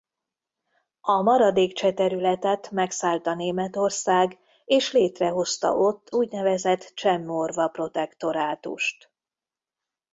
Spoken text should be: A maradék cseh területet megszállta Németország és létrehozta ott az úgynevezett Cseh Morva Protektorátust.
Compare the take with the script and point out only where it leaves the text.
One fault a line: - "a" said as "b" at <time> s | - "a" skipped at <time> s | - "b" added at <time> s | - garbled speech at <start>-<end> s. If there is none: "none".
- "az" skipped at 6.1 s